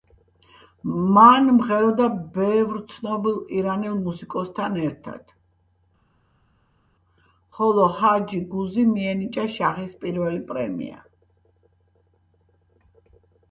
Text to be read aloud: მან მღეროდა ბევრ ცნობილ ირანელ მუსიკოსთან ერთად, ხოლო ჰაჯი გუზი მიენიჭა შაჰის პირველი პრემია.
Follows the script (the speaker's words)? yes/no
yes